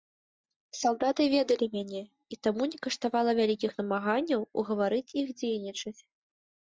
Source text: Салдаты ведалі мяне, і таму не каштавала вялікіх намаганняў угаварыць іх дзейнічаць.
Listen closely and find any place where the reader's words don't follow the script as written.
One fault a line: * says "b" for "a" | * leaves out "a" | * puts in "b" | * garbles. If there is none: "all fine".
all fine